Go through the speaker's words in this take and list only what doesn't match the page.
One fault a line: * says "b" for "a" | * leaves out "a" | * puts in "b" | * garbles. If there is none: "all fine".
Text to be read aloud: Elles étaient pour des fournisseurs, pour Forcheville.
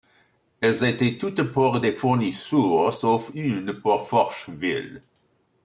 * puts in "toutes"
* puts in "sauf une"